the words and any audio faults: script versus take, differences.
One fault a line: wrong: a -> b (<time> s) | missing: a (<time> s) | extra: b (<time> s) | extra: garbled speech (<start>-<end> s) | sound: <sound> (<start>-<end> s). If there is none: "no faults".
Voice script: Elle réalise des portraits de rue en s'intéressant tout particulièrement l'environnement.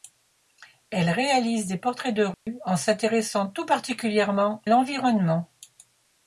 sound: dropout (2.3-2.5 s)